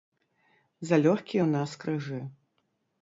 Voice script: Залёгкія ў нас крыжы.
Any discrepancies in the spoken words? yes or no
no